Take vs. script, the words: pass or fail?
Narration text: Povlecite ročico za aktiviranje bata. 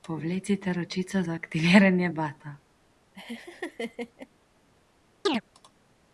pass